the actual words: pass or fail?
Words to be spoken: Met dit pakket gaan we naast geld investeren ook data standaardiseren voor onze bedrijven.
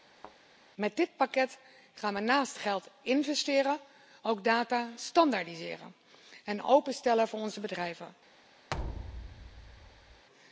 fail